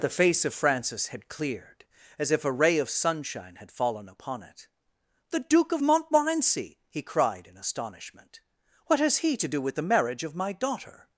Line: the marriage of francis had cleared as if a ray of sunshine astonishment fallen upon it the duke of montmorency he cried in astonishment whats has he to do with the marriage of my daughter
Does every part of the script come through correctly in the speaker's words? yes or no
no